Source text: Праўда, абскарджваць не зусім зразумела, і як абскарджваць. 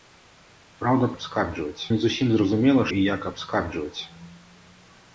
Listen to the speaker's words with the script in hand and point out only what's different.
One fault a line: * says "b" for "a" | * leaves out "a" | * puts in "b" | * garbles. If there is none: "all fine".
all fine